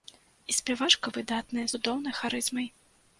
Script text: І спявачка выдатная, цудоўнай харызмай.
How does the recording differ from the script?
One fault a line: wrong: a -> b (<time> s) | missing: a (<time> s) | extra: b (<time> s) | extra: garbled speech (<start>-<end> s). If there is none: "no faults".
no faults